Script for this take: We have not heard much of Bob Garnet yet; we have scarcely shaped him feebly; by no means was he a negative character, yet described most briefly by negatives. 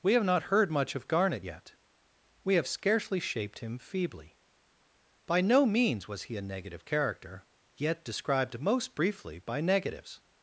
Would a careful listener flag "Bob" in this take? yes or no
yes